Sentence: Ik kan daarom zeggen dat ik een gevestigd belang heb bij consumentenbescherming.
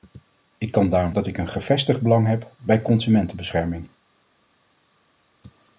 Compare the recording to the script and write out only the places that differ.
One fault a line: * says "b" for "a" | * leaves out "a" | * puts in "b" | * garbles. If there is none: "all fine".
* leaves out "zeggen"